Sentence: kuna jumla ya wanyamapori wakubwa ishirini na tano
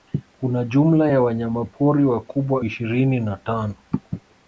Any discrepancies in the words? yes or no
no